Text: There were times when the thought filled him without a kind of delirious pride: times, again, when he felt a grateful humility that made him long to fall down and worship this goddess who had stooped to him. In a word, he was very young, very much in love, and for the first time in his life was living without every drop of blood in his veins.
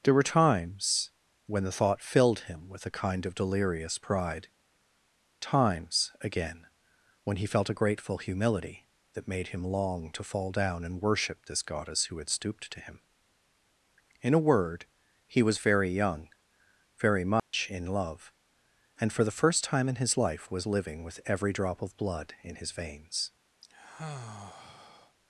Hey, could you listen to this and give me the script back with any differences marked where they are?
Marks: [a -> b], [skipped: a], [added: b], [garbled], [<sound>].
There were times when the thought filled him [without -> with] a kind of delirious pride: times, again, when he felt a grateful humility that made him long to fall down and worship this goddess who had stooped to him. In a word, he was very young, very much [dropout] in love, and for the first time in his life was living [without -> with] every drop of blood in his veins. [sigh]